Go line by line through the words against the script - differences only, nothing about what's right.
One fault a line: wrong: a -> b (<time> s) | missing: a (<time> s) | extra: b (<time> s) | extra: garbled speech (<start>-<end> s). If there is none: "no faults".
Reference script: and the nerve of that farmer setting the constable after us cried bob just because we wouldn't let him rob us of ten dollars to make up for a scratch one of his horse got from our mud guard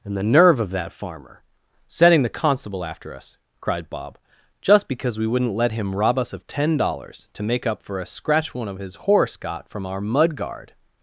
no faults